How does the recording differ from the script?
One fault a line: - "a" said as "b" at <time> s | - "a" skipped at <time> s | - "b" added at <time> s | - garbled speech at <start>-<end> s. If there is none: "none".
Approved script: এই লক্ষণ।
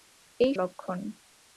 none